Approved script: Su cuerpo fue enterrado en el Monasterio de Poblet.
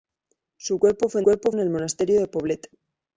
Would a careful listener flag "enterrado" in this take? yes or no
yes